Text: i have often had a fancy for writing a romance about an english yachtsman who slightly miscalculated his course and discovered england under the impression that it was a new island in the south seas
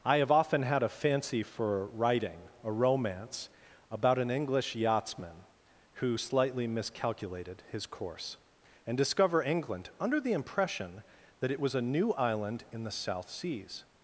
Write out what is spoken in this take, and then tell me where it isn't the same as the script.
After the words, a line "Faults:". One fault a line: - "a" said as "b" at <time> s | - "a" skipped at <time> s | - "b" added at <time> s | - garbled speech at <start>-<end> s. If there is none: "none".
i have often had a fancy for writing a romance about an english yachtsman who slightly miscalculated his course and discover england under the impression that it was a new island in the south seas
Faults:
- "discovered" said as "discover" at 9.0 s